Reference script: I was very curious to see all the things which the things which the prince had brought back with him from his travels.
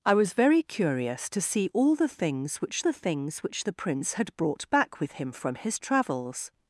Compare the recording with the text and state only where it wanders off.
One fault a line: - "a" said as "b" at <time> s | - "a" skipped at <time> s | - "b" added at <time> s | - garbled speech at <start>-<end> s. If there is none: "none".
none